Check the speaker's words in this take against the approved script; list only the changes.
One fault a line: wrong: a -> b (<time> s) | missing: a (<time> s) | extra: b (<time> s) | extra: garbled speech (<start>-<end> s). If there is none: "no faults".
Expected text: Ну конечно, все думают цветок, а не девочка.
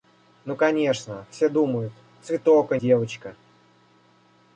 missing: не (2.8 s)